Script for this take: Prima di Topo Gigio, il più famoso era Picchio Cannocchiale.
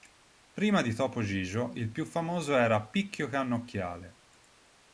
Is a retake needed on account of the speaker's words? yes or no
no